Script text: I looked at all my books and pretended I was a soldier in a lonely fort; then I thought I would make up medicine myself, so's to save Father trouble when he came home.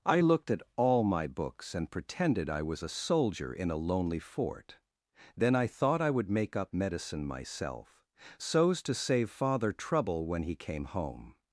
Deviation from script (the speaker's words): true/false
false